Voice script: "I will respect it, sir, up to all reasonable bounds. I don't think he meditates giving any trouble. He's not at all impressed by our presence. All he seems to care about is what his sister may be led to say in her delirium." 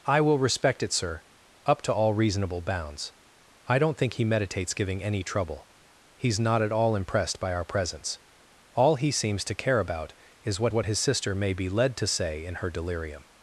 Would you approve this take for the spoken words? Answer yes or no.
no